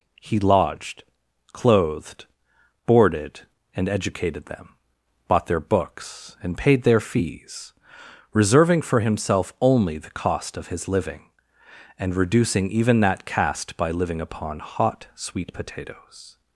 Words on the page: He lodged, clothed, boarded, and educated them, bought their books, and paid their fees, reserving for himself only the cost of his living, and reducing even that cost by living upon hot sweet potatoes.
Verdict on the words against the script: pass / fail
fail